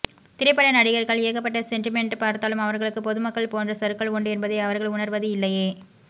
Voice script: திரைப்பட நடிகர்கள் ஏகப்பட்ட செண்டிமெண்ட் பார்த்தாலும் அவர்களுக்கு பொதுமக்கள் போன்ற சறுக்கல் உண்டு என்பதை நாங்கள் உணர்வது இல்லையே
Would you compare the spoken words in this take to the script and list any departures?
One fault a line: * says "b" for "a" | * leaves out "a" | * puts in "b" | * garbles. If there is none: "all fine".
* says "அவர்கள்" for "நாங்கள்"